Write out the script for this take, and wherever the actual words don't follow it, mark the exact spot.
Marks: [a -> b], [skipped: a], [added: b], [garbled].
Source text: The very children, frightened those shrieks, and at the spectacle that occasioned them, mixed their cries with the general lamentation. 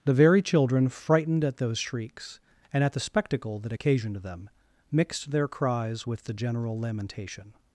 The very children, frightened [added: at] those shrieks, and at the spectacle that occasioned them, mixed their cries with the general lamentation.